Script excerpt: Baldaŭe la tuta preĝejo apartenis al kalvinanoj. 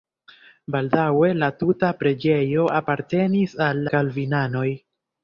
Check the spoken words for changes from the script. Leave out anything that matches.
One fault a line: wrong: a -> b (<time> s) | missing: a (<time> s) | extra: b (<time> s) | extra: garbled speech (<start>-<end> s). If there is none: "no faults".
no faults